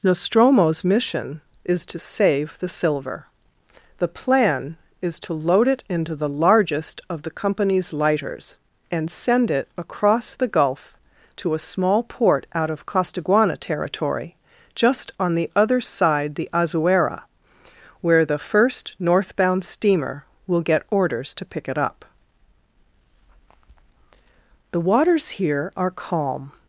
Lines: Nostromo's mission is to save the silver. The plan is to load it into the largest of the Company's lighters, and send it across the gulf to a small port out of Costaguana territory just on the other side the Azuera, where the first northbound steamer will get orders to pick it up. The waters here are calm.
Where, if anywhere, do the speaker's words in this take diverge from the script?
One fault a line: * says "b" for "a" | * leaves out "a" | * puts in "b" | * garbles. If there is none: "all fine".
all fine